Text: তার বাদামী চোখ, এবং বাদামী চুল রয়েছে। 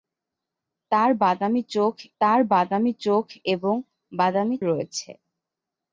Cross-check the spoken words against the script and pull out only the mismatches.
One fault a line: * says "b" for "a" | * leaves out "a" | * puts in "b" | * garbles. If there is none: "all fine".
* puts in "তার বাদামী চোখ"
* leaves out "চুল"